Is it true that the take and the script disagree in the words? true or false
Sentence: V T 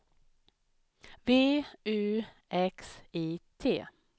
true